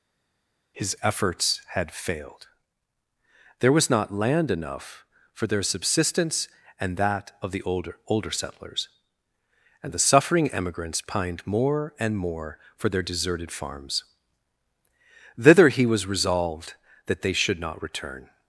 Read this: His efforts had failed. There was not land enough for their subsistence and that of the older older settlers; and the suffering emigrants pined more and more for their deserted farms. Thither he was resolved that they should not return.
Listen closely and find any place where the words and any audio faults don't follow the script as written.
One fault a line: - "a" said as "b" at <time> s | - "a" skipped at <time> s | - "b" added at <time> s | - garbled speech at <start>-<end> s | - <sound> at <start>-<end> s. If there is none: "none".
none